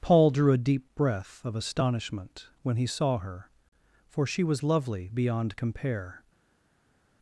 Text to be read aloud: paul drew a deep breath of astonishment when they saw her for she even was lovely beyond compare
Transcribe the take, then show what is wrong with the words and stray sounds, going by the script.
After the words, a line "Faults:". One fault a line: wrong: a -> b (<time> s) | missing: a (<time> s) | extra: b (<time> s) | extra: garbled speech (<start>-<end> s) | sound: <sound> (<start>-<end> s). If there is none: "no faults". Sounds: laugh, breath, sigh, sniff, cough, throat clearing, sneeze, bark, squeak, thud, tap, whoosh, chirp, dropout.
paul drew a deep breath of astonishment when he saw her for she was lovely beyond compare
Faults:
wrong: they -> he (2.8 s)
missing: even (4.4 s)